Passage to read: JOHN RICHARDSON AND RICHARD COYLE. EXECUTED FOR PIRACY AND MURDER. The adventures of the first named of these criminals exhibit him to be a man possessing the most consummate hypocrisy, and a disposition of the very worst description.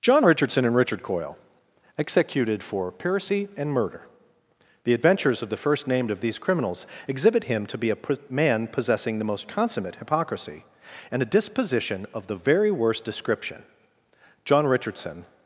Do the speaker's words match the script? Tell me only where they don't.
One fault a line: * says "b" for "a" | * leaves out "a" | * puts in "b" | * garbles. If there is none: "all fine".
* puts in "John Richardson"